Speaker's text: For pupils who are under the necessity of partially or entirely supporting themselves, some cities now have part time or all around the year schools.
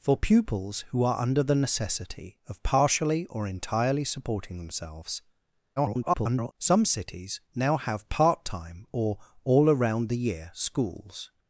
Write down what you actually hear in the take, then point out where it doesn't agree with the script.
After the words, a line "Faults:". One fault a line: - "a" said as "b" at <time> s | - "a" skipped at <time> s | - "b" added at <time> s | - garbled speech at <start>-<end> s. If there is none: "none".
For pupils who are under the necessity of partially or entirely supporting themselves, [garbled] some cities now have part time or all around the year schools.
Faults:
- garbled speech at 5.8-6.5 s